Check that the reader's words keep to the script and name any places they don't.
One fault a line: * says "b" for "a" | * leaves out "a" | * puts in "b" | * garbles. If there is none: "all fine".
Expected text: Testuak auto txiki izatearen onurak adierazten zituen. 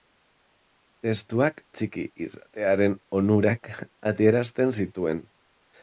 * leaves out "auto"